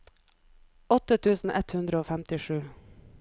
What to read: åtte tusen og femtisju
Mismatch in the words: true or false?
true